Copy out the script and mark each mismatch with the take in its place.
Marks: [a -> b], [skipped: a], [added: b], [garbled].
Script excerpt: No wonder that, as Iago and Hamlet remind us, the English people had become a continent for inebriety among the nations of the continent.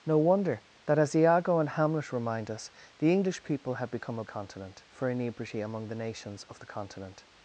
No wonder that, as Iago and Hamlet remind us, the English people had become a continent for inebriety among the nations of the continent.